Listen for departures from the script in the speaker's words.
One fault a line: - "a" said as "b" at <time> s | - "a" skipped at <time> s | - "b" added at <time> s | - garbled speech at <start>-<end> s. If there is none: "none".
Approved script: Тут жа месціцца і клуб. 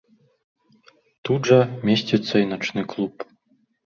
- "начны" added at 2.5 s